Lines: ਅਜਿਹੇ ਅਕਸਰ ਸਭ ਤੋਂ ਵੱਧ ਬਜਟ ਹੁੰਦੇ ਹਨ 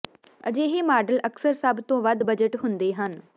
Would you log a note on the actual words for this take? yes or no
yes